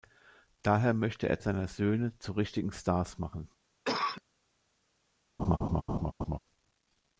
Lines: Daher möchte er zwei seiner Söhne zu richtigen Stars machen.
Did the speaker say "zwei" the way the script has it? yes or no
no